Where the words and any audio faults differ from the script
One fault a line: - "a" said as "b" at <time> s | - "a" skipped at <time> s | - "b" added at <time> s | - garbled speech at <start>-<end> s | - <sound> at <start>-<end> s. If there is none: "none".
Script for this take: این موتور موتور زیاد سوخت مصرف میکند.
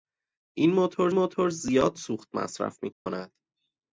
- dropout at 2.9-3.1 s